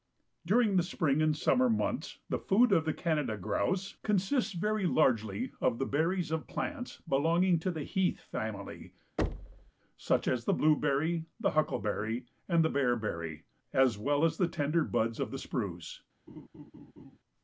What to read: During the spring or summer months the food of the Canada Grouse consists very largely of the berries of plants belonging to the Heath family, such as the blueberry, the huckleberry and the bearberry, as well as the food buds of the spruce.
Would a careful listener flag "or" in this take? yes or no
yes